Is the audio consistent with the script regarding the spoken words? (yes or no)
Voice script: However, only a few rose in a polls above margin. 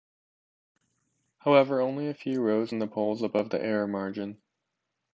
no